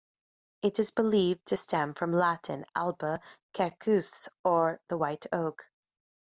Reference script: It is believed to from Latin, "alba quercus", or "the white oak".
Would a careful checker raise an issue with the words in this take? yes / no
yes